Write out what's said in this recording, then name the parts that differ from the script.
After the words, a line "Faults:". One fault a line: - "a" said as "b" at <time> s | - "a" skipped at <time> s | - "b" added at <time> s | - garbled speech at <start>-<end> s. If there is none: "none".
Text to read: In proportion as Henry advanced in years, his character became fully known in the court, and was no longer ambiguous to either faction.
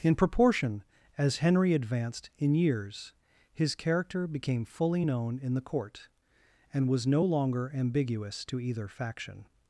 In proportion as Henry advanced in years, his character became fully known in the court, and was no longer ambiguous to either faction.
Faults:
none